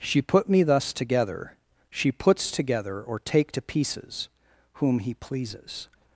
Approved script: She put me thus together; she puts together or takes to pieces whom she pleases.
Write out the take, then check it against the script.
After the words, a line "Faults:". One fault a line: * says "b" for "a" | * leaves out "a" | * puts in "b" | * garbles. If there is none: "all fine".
She put me thus together; she puts together or take to pieces whom he pleases.
Faults:
* says "take" for "takes"
* says "he" for "she"